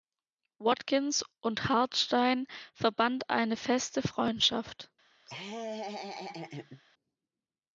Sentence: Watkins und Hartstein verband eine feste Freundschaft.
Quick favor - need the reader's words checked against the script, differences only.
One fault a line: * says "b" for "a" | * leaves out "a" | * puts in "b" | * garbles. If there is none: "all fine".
all fine